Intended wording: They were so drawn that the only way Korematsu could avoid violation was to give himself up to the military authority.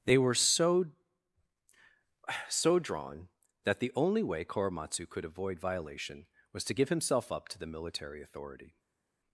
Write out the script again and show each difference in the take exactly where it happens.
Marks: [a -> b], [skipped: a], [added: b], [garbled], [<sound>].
They were so [added: so] drawn that the only way Korematsu could avoid violation was to give himself up to the military authority.